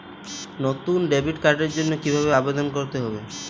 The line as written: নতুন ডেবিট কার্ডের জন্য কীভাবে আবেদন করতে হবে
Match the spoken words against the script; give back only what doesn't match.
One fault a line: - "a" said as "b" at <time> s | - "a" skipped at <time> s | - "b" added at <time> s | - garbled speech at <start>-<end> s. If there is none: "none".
none